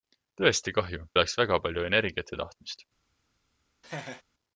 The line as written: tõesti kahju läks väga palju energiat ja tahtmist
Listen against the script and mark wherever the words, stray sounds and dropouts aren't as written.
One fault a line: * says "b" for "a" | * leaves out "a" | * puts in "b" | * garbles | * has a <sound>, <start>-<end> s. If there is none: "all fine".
* has a laugh, 3.8-4.2 s